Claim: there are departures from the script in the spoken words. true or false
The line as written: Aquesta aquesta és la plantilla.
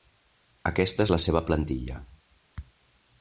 true